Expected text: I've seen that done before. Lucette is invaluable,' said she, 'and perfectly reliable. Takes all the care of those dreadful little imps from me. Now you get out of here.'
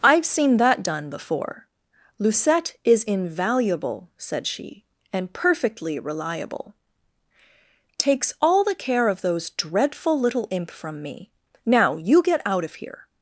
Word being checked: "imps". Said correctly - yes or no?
no